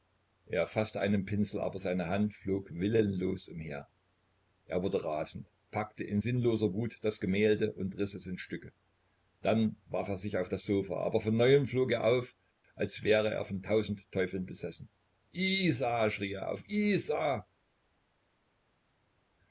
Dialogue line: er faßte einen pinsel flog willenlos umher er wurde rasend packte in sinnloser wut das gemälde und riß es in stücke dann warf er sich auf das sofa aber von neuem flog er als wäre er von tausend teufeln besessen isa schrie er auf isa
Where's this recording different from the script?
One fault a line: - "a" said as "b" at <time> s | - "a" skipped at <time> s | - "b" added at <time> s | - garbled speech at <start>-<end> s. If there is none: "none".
- "aber seine hand" added at 1.6 s
- "auf" added at 12.0 s